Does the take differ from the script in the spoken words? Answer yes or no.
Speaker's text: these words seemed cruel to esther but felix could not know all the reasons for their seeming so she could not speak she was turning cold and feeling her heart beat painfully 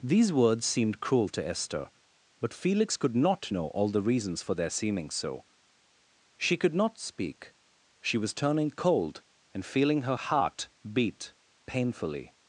no